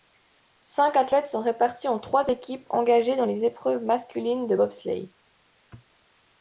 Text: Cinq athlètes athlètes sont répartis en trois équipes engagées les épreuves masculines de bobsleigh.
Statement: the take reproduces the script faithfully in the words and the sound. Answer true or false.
false